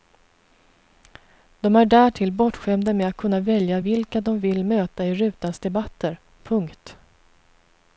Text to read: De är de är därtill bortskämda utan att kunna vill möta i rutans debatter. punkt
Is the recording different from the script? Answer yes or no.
yes